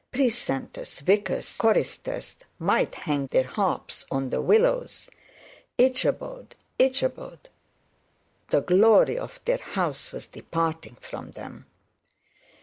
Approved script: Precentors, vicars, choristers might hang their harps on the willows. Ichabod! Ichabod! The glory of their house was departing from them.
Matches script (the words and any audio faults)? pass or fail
pass